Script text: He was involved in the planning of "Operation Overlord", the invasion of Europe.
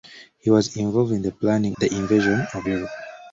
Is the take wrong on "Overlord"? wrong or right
wrong